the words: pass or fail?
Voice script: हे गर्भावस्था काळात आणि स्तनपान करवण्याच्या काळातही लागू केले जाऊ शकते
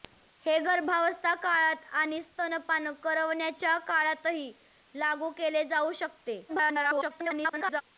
fail